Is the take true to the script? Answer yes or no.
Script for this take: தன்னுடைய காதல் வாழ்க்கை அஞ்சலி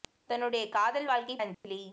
yes